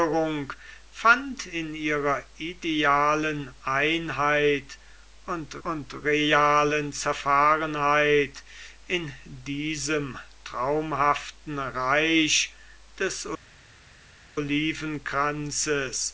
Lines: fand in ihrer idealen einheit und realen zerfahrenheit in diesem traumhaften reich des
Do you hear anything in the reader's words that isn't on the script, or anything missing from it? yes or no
yes